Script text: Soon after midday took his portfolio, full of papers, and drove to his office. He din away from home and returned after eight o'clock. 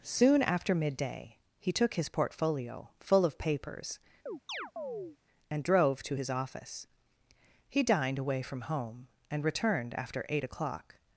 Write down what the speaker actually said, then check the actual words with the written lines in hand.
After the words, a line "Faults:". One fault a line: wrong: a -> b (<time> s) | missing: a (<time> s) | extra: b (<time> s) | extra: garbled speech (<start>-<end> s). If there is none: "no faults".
Soon after midday he took his portfolio, full of papers, and drove to his office. He dined away from home and returned after eight o'clock.
Faults:
extra: he (1.6 s)
wrong: din -> dined (7.8 s)